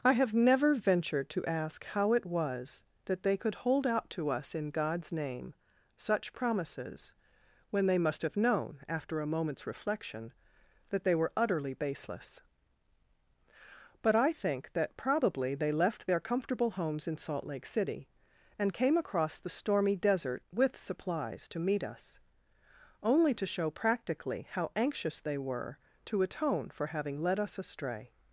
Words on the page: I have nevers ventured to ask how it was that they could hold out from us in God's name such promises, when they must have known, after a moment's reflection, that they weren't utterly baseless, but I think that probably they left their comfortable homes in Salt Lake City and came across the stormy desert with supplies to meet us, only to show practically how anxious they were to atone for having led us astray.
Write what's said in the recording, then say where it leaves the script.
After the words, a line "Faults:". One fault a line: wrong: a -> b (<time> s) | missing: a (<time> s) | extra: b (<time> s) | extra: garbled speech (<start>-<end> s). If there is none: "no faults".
I have never ventured to ask how it was that they could hold out to us in God's name such promises, when they must have known, after a moment's reflection, that they were utterly baseless, but I think that probably they left their comfortable homes in Salt Lake City and came across the stormy desert with supplies to meet us, only to show practically how anxious they were to atone for having led us astray.
Faults:
wrong: nevers -> never (0.3 s)
wrong: from -> to (4.1 s)
wrong: weren't -> were (11.1 s)